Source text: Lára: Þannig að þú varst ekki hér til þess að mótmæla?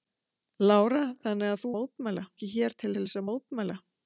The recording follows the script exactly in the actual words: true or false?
false